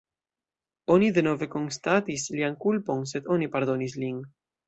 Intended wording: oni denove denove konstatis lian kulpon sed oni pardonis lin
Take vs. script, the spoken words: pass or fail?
fail